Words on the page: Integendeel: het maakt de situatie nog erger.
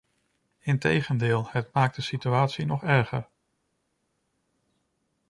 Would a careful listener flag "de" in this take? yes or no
no